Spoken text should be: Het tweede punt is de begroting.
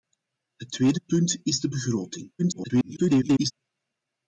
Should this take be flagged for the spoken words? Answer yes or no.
yes